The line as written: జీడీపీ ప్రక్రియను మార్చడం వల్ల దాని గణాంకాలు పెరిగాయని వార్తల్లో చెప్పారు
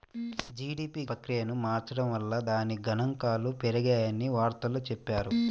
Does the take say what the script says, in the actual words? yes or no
yes